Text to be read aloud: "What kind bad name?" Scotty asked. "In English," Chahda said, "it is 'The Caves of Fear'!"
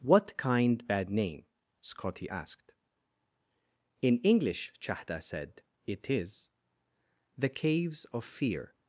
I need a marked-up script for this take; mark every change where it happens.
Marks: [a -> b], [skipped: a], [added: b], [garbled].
"What kind bad name?" Scotty asked. "In English," Chahda said, "it is 'The Caves of Fear'!"